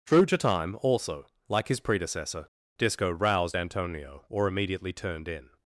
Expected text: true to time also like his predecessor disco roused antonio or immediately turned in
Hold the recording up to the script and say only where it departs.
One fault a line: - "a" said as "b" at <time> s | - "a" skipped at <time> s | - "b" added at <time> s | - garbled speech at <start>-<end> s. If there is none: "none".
none